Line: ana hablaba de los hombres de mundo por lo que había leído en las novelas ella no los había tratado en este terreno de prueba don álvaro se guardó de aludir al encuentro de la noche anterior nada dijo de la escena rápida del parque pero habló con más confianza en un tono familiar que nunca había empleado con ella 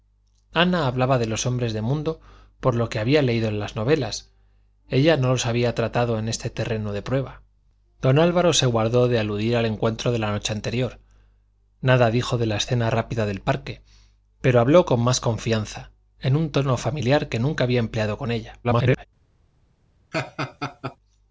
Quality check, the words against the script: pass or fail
fail